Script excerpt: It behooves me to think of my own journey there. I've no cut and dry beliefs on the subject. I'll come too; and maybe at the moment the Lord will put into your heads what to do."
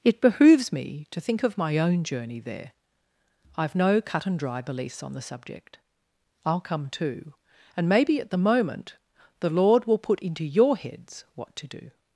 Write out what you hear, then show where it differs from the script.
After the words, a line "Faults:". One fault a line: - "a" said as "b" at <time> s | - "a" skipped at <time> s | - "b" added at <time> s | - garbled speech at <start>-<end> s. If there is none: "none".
It behooves me to think of my own journey there. I've no cut and dry beliefs on the subject. I'll come too; and maybe at the moment the Lord will put into your heads what to do."
Faults:
none